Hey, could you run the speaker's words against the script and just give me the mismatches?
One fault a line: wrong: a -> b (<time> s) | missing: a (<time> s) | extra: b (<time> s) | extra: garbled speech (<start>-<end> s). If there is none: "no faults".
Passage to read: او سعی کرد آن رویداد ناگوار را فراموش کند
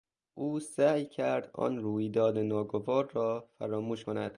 no faults